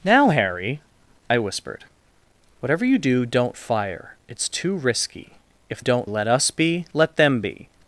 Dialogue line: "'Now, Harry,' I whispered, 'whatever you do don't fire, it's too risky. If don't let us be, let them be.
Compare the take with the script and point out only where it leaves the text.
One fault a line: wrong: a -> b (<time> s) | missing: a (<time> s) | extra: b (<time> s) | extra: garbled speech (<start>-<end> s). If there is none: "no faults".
no faults